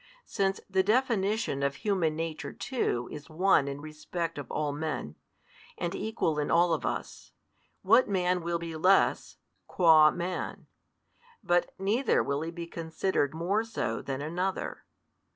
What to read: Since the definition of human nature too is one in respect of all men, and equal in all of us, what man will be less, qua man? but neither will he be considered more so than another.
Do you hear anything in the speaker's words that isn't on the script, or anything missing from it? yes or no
no